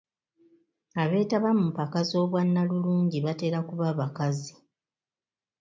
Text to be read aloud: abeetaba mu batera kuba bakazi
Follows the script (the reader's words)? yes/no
no